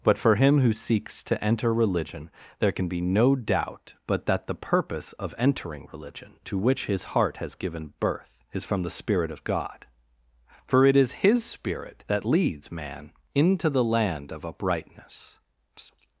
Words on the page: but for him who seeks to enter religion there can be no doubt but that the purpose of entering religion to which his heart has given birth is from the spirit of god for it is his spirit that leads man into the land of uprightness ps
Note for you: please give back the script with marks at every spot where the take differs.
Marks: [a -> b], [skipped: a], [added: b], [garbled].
but for him who seeks to enter religion there can be no doubt but that the purpose of entering religion to which his heart has given birth is from the spirit of god for it is his spirit that leads man into the land of uprightness [skipped: ps]